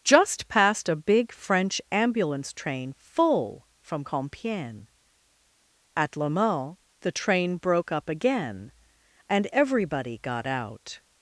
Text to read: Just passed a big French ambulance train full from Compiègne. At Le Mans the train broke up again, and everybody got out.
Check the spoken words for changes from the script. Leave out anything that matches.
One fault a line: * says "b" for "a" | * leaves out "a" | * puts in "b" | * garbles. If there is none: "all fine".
all fine